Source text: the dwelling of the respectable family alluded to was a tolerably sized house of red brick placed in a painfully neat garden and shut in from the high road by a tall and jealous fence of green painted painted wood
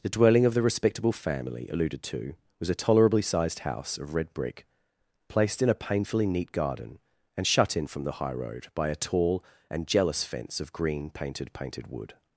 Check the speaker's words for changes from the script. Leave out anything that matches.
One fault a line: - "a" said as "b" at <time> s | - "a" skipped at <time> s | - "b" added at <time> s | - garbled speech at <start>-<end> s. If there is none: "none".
none